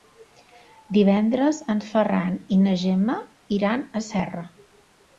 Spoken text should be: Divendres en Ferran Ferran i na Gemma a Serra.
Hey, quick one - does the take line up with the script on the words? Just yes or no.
no